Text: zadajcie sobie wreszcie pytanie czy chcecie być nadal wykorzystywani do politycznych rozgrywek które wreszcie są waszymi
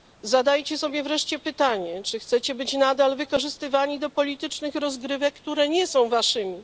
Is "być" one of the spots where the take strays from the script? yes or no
no